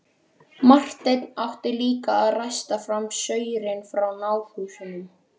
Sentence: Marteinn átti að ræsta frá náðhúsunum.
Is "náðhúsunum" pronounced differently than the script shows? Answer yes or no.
no